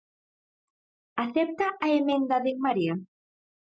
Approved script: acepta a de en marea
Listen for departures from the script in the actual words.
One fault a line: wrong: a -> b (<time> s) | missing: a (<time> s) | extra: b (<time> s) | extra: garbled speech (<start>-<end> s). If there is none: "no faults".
extra: emenda (2.0 s)